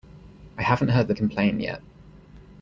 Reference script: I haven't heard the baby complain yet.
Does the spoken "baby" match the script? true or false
false